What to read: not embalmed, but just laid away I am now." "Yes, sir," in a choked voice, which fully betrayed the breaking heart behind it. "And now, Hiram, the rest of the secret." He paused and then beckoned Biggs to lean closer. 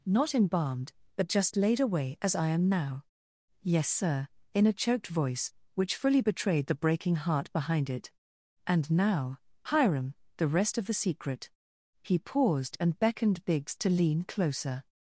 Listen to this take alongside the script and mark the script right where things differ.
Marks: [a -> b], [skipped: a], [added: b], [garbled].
not embalmed, but just laid away [added: as] I am now." "Yes, sir," in a choked voice, which fully betrayed the breaking heart behind it. "And now, Hiram, the rest of the secret." He paused and [skipped: then] beckoned Biggs to lean closer.